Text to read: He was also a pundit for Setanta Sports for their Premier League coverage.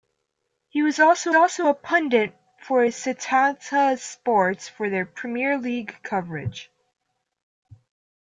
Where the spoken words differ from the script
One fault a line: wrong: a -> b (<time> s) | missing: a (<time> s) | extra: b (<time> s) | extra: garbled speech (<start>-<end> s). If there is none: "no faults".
extra: also (1.3 s)